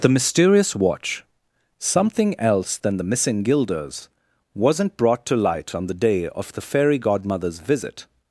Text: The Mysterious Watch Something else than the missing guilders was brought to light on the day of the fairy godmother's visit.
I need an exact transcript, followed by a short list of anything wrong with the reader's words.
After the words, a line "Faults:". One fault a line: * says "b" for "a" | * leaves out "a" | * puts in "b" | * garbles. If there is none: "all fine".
The Mysterious Watch Something else than the missing guilders wasn't brought to light on the day of the fairy godmother's visit.
Faults:
* says "wasn't" for "was"